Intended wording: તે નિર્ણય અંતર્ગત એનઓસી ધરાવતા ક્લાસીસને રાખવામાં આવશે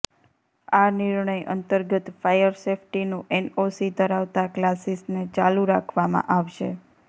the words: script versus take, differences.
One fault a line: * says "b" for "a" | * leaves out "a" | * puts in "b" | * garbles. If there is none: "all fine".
* says "આ" for "તે"
* puts in "ફાયર સેફ્ટીનું"
* puts in "ચાલુ"